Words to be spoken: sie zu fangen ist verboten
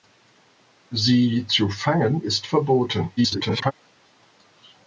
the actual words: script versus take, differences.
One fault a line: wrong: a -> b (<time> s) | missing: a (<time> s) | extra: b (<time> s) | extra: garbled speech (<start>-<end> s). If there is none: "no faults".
extra: garbled speech (3.2-3.7 s)